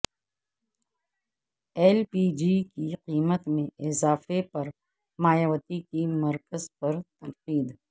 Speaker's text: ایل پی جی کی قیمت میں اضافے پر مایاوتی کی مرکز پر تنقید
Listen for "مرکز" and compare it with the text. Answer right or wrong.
right